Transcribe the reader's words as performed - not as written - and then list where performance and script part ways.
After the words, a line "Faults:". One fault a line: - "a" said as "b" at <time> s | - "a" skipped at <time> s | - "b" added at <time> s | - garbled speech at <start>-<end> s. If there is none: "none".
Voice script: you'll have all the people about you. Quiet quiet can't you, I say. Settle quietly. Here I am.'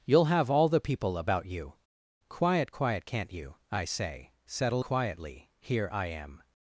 you'll have all the people about you. Quiet quiet can't you, I say. Settle quietly. Here I am.'
Faults:
none